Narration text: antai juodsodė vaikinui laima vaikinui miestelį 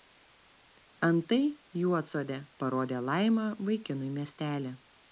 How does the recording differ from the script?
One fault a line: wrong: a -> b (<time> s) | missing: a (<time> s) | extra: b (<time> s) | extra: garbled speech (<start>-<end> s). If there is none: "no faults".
wrong: vaikinui -> parodė (2.6 s)